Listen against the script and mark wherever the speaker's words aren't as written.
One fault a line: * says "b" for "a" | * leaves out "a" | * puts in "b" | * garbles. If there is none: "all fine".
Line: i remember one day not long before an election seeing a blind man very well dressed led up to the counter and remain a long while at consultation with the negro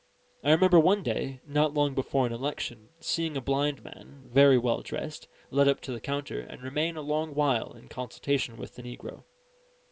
* says "in" for "at"